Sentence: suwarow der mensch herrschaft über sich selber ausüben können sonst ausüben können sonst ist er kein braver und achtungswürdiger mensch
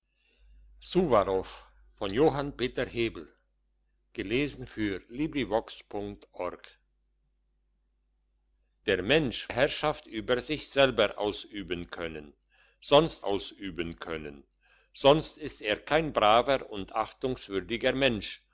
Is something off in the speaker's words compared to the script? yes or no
no